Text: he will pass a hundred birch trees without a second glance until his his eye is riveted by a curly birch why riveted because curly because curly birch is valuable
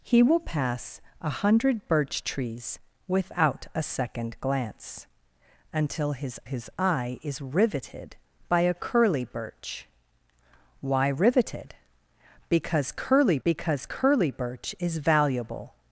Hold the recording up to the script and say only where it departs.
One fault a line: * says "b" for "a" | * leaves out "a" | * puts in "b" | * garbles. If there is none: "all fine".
all fine